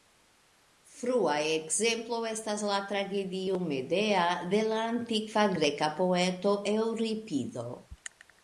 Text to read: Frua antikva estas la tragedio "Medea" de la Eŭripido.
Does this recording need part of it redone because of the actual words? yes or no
yes